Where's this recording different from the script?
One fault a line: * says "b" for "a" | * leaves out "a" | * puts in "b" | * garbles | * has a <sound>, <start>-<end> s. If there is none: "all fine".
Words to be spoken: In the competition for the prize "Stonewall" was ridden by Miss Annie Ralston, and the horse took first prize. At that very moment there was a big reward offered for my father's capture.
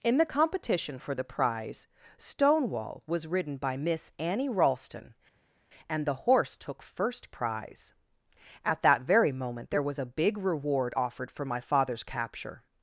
all fine